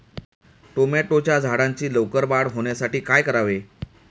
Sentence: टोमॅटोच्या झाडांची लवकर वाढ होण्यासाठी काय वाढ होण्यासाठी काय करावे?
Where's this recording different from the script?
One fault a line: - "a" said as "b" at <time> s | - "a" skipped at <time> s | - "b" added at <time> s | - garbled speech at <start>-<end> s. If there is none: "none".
- "वाढ होण्यासाठी काय" skipped at 3.2 s